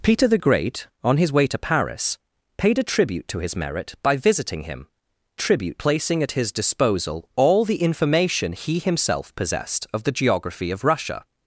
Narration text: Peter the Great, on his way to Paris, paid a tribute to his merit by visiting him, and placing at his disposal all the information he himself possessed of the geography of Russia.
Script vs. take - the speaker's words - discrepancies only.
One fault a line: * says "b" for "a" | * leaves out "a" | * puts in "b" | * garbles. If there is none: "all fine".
* says "tribute" for "and"